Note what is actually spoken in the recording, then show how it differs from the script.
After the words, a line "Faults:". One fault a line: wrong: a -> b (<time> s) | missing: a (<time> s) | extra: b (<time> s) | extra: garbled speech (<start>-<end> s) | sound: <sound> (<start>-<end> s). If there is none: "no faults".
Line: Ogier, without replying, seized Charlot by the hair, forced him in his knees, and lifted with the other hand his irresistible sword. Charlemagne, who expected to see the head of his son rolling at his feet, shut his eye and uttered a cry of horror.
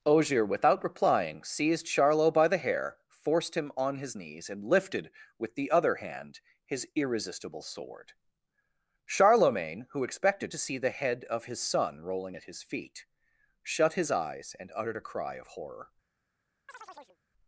Ogier, without replying, seized Charlot by the hair, forced him on his knees, and lifted with the other hand his irresistible sword. Charlemagne, who expected to see the head of his son rolling at his feet, shut his eyes and uttered a cry of horror.
Faults:
wrong: in -> on (3.8 s)
wrong: eye -> eyes (14.1 s)
sound: chirp (16.7-17.2 s)